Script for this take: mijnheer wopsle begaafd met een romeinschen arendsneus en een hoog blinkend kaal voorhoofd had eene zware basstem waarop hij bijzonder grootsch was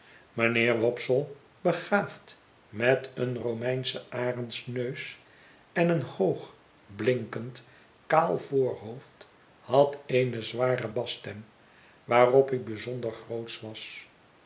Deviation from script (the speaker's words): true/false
false